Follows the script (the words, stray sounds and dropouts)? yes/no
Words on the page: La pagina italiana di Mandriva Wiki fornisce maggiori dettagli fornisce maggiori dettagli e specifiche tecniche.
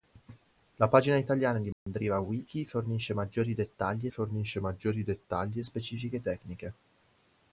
no